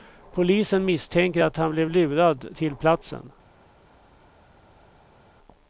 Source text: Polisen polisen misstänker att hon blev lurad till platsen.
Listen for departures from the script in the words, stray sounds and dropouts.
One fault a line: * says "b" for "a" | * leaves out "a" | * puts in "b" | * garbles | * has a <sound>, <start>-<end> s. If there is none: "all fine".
* leaves out "polisen"
* says "han" for "hon"